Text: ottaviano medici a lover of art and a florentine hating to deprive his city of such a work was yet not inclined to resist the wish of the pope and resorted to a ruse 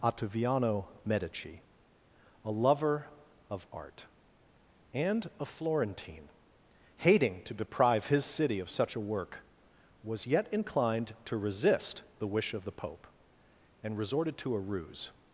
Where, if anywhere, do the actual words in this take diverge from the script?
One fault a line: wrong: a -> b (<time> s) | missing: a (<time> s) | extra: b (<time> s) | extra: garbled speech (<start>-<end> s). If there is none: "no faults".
missing: not (10.5 s)